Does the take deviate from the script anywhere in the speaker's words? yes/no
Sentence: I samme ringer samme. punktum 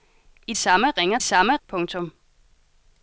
no